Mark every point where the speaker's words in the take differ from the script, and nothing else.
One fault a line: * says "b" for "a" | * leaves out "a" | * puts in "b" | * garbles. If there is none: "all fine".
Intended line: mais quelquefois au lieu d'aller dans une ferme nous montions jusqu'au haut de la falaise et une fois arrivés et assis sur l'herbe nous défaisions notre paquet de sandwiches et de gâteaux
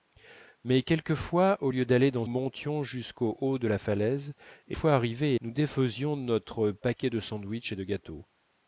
* leaves out "une ferme nous"
* leaves out "une"
* leaves out "assis sur l'herbe"